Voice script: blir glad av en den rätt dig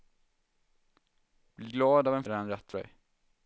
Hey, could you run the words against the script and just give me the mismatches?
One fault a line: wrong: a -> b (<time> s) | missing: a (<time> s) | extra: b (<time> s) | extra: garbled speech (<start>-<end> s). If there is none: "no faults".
no faults